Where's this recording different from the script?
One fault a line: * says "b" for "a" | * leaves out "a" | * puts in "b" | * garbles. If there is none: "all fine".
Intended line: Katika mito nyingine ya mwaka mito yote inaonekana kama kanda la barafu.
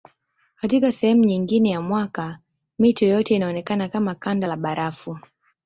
* says "sehemu" for "mito"